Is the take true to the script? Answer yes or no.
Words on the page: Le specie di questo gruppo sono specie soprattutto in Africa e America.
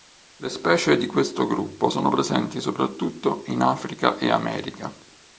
no